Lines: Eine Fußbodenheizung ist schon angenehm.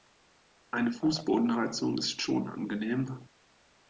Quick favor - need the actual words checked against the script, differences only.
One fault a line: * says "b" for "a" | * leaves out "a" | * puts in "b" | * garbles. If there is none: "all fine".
all fine